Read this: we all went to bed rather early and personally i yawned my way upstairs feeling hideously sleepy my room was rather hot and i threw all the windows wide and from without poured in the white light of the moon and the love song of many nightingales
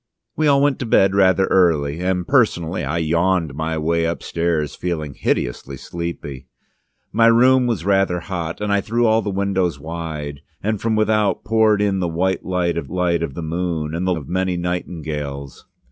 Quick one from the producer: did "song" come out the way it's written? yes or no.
no